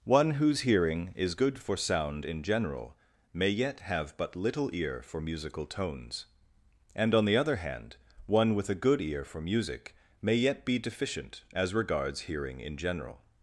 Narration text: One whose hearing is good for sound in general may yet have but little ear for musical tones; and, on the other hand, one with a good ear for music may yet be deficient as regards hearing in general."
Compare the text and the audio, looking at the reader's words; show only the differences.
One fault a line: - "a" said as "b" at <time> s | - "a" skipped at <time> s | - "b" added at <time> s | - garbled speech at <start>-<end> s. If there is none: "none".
none